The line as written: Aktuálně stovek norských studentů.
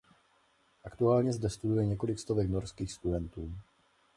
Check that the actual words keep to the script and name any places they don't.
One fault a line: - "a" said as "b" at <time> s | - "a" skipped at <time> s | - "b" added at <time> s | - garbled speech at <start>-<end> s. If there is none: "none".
- "zde studuje několik" added at 1.3 s